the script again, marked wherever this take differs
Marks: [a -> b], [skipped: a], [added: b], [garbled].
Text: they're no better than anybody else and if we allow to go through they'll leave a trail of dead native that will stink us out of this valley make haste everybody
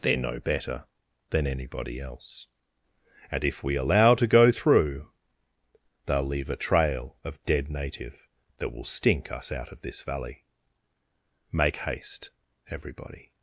they're no better than anybody else and if we allow to go through they'll leave a trail of dead native that will stink us out of this valley make haste everybody